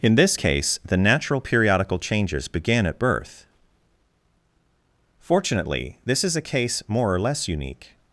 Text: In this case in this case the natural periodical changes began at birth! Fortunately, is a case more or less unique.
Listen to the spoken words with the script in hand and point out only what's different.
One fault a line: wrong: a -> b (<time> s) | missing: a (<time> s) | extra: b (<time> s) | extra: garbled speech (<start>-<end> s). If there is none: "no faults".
missing: in this case (0.8 s)
extra: this (6.0 s)